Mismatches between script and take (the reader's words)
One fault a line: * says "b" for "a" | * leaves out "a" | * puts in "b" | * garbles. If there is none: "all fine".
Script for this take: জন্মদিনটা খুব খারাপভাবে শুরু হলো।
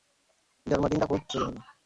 * leaves out "খারাপভাবে"